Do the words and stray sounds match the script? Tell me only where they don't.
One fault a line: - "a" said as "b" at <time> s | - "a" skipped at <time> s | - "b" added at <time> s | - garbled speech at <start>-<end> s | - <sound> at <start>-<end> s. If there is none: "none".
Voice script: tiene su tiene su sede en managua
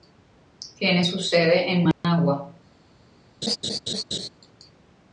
- "tiene su" skipped at 1.2 s
- dropout at 1.9-2.0 s
- laugh at 3.4-4.3 s